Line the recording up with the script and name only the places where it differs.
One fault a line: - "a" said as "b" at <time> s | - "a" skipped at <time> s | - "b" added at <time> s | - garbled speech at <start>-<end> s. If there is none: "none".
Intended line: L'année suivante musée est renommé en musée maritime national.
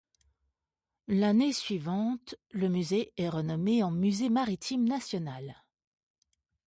- "le" added at 2.5 s